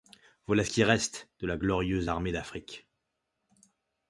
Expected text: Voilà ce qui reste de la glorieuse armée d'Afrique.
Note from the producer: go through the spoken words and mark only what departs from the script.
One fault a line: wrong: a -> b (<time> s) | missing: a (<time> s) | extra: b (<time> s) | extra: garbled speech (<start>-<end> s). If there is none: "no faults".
no faults